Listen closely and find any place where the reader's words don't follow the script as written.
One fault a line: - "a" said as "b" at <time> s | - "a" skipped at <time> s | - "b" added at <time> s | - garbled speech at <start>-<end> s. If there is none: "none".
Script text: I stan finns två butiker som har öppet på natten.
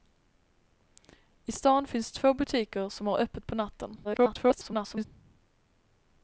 - garbled speech at 4.0-5.0 s